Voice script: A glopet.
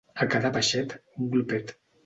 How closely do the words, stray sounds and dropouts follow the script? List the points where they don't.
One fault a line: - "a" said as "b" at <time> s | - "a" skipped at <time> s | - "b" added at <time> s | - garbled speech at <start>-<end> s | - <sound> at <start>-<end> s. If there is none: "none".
- "cada peixet un" added at 0.3 s